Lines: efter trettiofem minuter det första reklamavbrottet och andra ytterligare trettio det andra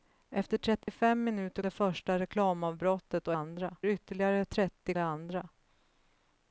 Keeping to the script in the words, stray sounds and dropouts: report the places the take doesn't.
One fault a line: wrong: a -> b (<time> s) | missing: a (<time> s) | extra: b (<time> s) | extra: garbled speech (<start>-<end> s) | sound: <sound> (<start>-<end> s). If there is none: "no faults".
sound: dropout (0.8-0.9 s)